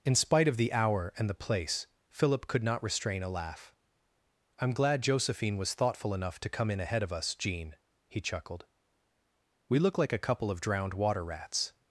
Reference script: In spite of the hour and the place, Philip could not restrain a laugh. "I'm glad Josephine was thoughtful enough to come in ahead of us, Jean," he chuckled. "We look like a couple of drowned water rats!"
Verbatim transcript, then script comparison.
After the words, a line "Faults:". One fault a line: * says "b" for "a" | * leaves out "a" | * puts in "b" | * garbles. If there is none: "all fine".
In spite of the hour and the place, Philip could not restrain a laugh. "I'm glad Josephine was thoughtful enough to come in ahead of us, Jean," he chuckled. "We look like a couple of drowned water rats!"
Faults:
all fine